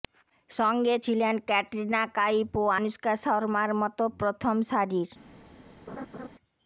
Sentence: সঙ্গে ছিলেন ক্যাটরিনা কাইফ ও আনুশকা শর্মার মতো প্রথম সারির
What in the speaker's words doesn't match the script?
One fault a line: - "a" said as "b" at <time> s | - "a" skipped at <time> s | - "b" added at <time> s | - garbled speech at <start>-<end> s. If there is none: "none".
none